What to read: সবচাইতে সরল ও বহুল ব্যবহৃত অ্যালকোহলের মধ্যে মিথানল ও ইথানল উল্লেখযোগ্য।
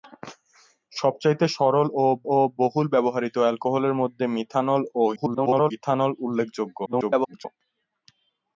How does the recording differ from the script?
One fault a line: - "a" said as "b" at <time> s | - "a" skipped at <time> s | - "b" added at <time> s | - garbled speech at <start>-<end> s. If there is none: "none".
- "ও" added at 2.3 s
- garbled speech at 5.2-5.7 s
- garbled speech at 6.9-7.5 s